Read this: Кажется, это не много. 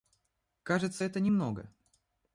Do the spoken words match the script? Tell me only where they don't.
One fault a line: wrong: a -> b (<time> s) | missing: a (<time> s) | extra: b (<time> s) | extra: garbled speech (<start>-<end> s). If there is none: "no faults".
no faults